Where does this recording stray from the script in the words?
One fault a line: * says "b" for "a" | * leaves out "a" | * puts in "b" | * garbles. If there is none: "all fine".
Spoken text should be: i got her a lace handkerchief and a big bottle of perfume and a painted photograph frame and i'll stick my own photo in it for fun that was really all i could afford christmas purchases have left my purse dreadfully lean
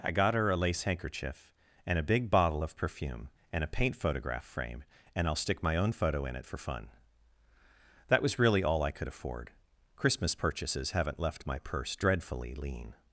* says "paint" for "painted"
* says "haven't" for "have"